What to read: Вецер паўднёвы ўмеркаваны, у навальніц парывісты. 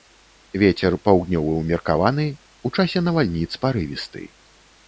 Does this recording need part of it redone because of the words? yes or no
yes